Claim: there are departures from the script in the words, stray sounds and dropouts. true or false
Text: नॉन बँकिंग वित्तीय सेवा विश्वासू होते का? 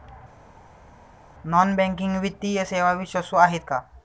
true